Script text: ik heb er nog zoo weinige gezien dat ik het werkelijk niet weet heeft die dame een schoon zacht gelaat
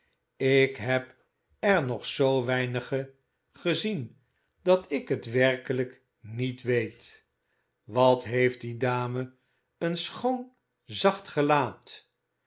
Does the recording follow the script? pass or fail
fail